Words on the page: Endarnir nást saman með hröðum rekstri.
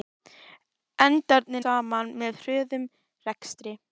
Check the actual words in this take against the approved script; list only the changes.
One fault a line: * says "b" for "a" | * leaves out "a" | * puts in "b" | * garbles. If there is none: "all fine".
* leaves out "nást"